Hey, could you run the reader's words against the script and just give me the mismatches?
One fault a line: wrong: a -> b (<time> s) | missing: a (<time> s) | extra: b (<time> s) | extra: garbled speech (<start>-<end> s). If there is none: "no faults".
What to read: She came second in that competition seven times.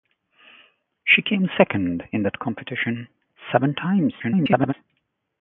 extra: garbled speech (4.2-4.7 s)